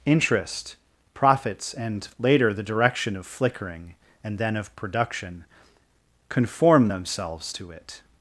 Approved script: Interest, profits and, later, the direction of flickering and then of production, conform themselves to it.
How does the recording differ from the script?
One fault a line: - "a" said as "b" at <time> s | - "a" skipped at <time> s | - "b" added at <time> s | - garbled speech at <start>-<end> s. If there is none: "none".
none